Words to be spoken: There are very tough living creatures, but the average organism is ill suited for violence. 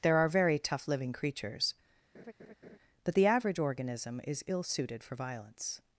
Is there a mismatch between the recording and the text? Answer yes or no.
no